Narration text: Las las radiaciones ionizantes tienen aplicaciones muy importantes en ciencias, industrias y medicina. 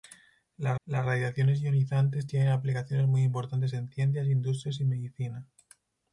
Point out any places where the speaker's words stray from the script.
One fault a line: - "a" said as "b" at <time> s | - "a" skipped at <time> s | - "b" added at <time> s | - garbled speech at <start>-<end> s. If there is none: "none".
none